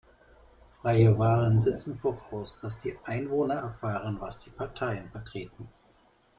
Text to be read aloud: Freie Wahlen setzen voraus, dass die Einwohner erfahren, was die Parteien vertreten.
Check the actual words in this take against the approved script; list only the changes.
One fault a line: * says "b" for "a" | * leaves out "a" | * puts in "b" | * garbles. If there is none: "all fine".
all fine